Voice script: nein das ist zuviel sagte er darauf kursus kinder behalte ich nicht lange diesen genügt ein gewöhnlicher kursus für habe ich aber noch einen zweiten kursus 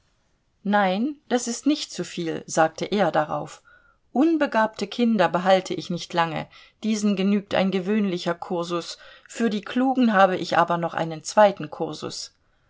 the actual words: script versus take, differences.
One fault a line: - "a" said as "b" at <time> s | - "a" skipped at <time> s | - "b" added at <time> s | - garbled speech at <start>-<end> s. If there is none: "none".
- "nicht" added at 1.7 s
- "kursus" said as "unbegabte" at 4.1 s
- "die klugen" added at 9.5 s